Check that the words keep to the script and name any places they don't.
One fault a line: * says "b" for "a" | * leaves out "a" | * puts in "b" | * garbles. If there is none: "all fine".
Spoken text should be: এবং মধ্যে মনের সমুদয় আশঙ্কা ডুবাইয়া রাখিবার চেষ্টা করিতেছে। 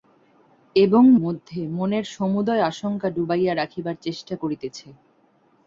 all fine